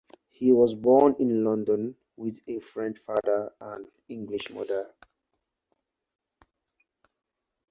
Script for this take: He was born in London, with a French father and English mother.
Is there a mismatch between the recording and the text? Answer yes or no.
no